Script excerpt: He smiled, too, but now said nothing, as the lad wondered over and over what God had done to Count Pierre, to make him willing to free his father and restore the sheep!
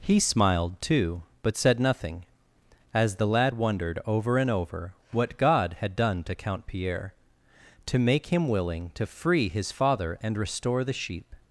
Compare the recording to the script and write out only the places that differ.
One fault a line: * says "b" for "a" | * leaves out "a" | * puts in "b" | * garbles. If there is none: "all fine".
* leaves out "now"